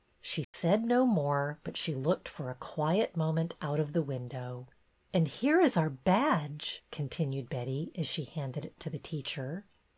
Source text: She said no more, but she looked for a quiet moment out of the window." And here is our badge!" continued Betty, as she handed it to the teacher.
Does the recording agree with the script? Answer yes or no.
yes